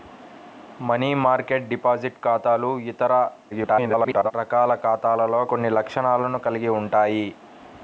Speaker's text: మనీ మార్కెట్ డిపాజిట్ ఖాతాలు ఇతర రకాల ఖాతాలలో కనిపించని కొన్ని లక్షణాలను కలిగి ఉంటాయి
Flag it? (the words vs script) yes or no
yes